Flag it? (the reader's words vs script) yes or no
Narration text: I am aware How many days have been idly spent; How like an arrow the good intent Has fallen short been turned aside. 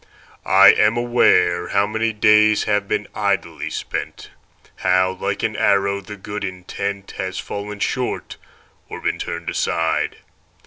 yes